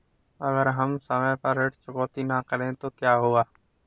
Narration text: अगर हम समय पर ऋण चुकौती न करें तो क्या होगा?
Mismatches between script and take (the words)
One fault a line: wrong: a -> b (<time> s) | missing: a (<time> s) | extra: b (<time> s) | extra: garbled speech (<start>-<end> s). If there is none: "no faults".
no faults